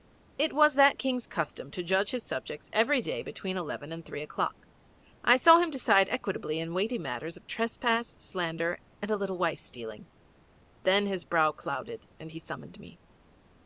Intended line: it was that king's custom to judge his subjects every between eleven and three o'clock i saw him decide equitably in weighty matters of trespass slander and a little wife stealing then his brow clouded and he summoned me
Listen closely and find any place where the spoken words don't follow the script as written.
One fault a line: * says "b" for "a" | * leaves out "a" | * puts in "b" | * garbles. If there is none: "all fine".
* puts in "day"